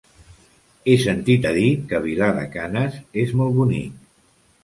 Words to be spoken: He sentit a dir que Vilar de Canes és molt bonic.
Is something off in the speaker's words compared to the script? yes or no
no